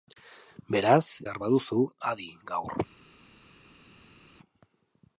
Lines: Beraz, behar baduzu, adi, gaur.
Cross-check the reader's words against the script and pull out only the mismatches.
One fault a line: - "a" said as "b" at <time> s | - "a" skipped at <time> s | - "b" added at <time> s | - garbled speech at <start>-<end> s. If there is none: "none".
none